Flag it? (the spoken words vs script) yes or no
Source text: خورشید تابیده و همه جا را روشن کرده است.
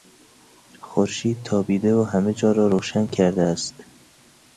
no